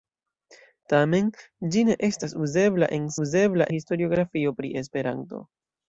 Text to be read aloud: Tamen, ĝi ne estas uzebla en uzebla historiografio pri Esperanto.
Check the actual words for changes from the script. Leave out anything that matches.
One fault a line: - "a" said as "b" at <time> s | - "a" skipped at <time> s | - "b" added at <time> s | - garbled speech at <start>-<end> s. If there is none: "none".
none